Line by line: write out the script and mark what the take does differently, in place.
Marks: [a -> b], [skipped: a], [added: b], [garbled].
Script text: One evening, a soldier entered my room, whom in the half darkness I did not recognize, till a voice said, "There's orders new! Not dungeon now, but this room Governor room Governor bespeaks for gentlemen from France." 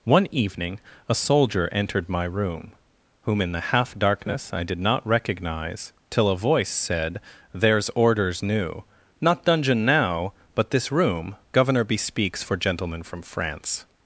One evening, a soldier entered my room, whom in the half darkness I did not recognize, till a voice said, "There's orders new! Not dungeon now, but this room Governor [skipped: room Governor] bespeaks for gentlemen from France."